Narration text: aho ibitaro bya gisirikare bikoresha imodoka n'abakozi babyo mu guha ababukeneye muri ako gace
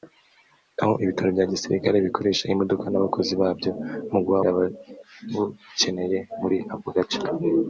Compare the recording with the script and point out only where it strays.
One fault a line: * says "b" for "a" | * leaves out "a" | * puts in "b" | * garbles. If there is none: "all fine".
all fine